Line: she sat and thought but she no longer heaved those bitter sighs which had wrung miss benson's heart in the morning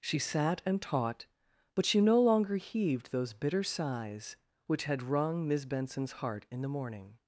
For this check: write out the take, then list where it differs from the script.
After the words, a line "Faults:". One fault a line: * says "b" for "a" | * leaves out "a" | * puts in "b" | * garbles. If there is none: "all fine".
she sat and taught but she no longer heaved those bitter sighs which had wrung miss benson's heart in the morning
Faults:
* says "taught" for "thought"